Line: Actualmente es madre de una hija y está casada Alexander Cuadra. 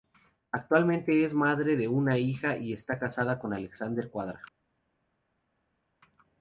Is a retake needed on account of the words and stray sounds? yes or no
yes